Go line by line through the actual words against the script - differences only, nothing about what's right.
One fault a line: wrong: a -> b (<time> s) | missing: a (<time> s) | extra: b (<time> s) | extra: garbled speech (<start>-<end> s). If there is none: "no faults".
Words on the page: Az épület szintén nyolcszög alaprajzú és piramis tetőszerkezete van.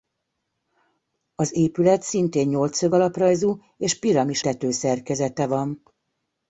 no faults